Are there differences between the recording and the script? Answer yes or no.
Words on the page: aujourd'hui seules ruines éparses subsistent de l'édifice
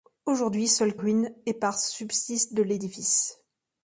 no